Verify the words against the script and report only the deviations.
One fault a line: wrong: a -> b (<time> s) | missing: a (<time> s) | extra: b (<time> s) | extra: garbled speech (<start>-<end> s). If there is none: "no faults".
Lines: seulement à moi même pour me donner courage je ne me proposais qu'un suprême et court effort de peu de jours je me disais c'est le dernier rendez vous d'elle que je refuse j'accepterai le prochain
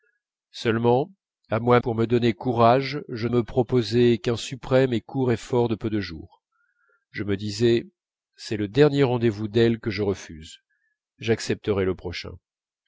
missing: même (1.8 s)
missing: ne (3.3 s)